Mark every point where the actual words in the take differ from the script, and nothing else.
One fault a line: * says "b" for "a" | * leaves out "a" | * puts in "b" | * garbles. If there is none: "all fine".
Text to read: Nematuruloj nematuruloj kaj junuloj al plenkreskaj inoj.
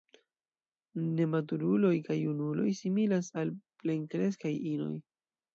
* leaves out "nematuruloj"
* puts in "similas"